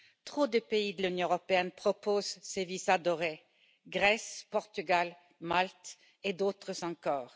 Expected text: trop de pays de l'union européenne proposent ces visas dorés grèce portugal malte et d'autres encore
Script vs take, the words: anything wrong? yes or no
no